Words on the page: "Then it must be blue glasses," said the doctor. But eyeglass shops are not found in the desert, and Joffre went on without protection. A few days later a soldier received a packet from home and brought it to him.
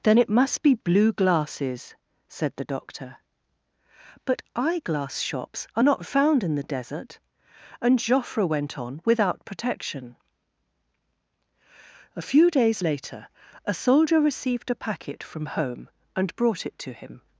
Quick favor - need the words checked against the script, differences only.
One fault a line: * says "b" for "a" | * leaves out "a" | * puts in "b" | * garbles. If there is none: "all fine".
all fine